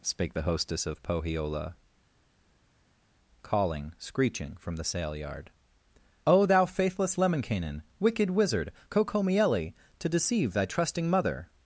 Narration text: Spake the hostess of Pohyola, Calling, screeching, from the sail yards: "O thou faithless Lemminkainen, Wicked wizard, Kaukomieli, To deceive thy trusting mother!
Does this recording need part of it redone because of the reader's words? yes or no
yes